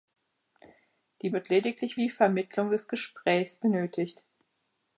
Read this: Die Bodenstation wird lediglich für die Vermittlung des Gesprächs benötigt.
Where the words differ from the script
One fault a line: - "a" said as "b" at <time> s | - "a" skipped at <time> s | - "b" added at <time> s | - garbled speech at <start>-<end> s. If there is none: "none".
- "Bodenstation" skipped at 1.3 s
- "für" skipped at 2.0 s